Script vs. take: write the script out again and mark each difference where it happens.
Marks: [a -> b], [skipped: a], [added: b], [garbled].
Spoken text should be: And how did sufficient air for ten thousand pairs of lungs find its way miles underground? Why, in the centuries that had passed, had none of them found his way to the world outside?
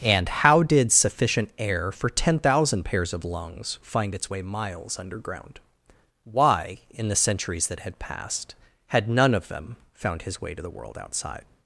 And how did sufficient air for ten thousand pairs of lungs find its way miles underground? Why, in the centuries that had passed, had none of them found his way to the world outside?